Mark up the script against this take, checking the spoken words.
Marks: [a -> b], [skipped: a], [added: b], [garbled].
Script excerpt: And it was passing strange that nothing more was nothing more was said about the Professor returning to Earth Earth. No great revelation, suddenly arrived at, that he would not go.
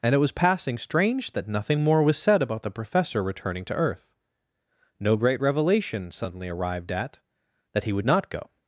And it was passing strange that nothing more was [skipped: nothing more was] said about the Professor returning to Earth [skipped: Earth.] No great revelation, suddenly arrived at, that he would not go.